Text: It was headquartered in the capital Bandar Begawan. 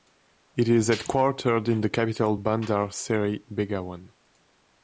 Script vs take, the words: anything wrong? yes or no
yes